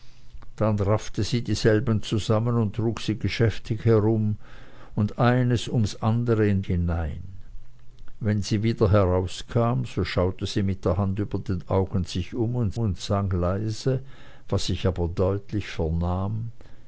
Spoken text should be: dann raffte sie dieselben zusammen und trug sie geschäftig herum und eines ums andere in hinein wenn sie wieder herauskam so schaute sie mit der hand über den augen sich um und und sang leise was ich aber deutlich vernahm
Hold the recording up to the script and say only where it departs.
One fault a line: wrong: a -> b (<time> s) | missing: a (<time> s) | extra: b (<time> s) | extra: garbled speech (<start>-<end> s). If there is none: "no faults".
no faults